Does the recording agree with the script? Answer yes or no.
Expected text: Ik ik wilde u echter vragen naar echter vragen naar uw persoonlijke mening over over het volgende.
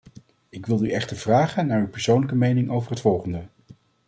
no